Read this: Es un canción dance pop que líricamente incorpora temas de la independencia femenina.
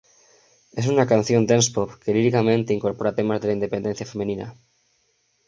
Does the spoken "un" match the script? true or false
false